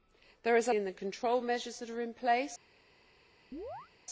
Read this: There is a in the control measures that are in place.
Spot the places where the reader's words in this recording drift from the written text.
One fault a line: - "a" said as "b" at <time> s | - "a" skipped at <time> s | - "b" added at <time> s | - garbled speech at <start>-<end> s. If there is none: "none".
none